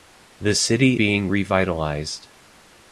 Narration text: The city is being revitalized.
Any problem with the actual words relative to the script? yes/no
yes